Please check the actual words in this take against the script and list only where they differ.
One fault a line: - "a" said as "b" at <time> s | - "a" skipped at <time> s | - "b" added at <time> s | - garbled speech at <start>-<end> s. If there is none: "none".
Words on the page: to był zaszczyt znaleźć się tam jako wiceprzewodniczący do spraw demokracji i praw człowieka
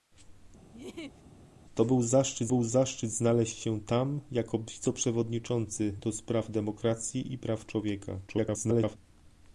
- "był zaszczyt" added at 2.5 s
- garbled speech at 8.3-9.0 s